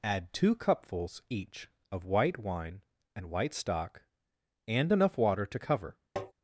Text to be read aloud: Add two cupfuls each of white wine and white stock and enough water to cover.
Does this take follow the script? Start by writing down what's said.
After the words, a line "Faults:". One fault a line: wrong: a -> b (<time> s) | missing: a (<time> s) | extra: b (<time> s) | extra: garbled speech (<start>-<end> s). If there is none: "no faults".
Add two cupfuls each of white wine and white stock and enough water to cover.
Faults:
no faults